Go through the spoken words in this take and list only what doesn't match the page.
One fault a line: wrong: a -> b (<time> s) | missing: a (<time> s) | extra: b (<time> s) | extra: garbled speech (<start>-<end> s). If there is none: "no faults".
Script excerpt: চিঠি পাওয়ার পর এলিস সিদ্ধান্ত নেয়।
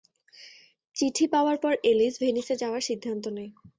extra: ভেনিসে যাওয়ার (2.2 s)